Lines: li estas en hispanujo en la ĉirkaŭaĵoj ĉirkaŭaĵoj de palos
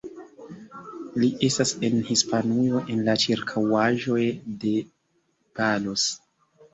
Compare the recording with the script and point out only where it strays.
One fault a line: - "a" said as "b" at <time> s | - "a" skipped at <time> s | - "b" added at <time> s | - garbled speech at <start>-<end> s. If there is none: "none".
- "ĉirkaŭaĵoj" skipped at 4.2 s